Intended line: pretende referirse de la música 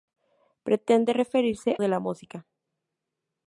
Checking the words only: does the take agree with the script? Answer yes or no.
yes